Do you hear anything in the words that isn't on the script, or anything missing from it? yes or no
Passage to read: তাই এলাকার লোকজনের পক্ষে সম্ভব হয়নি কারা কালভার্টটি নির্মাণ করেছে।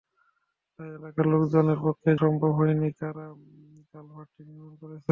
no